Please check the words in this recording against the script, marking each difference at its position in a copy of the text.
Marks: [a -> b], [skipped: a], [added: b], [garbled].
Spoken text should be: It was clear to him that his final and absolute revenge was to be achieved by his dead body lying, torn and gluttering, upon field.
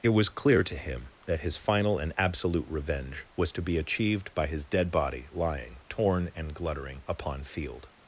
It was clear to him that his final and absolute revenge was to be achieved by his dead body lying, torn and gluttering, upon field.